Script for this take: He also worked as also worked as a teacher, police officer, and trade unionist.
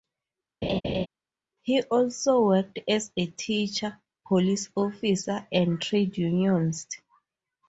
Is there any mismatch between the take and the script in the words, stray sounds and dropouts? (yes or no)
yes